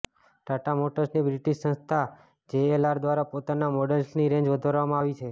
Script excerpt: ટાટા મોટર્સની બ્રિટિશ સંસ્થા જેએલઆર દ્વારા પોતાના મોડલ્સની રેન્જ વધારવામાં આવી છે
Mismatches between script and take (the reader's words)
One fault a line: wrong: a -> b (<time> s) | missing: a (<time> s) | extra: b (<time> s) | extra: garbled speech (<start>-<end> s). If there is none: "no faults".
no faults